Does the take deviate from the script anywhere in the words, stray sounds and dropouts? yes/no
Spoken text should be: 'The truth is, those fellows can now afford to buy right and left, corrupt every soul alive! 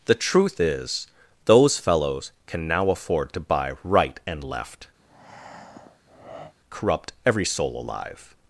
yes